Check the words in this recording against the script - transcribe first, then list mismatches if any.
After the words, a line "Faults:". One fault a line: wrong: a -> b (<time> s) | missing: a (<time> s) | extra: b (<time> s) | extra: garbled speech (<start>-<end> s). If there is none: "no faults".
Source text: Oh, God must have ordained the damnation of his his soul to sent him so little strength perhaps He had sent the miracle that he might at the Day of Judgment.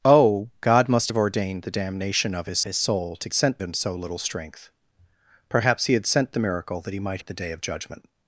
Oh, God must have ordained the damnation of his his soul to sent him so little strength perhaps He had sent the miracle that he might at the Day of Judgment.
Faults:
no faults